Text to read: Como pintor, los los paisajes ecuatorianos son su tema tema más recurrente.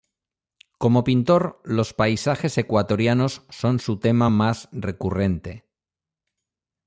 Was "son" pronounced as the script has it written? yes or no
yes